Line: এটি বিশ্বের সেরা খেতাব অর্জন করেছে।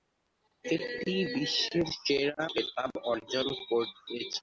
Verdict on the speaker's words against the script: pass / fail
pass